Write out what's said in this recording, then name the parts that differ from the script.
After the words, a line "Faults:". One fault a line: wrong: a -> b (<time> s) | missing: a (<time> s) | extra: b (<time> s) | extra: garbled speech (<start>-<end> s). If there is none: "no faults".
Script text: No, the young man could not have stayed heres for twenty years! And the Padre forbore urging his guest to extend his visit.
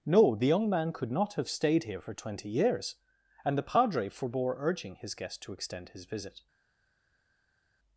No, the young man could not have stayed here for twenty years! And the Padre forbore urging his guest to extend his visit.
Faults:
wrong: heres -> here (1.8 s)